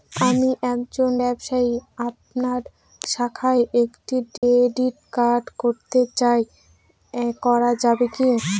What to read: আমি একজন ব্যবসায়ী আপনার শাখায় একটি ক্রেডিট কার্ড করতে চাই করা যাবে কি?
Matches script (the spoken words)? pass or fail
pass